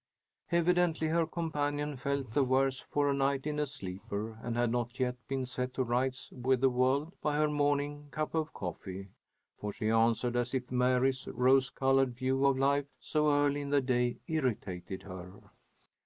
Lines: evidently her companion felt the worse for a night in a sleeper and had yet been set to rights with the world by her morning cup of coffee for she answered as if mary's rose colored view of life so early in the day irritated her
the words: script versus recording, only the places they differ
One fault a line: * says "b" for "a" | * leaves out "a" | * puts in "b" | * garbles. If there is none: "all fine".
* puts in "not"